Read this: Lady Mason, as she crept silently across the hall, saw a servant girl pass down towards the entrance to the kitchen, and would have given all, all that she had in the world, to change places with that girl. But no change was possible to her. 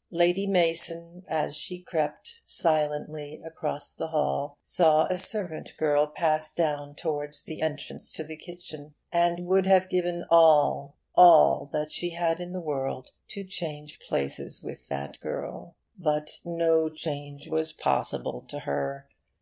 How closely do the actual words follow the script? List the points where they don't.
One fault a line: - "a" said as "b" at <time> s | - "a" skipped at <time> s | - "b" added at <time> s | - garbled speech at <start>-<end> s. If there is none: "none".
none